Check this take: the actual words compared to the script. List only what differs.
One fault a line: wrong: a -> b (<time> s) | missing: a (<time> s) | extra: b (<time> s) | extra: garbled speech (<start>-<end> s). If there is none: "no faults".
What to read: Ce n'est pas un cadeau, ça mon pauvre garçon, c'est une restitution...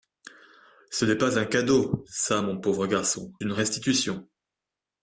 missing: c'est (3.3 s)